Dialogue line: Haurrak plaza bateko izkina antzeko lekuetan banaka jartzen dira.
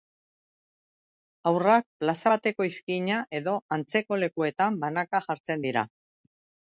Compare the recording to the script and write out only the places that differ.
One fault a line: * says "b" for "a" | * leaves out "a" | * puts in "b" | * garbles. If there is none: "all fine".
* puts in "edo"